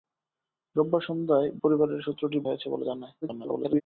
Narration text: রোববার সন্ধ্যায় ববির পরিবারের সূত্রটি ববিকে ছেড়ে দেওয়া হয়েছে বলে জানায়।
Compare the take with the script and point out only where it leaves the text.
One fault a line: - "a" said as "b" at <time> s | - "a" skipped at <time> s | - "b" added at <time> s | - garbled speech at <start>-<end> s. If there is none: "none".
- "ববির" skipped at 1.5 s
- "ববিকে ছেড়ে দেওয়া" skipped at 2.4 s
- garbled speech at 3.2-3.8 s